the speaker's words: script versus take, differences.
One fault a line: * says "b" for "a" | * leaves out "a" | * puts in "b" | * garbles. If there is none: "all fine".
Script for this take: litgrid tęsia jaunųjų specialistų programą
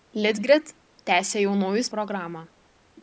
* leaves out "specialistų"